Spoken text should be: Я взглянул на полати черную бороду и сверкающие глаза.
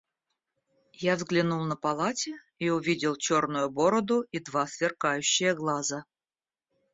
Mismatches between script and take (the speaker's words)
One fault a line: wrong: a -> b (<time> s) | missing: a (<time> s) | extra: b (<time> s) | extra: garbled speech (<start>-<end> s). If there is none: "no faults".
extra: и увидел (2.6 s)
extra: два (4.4 s)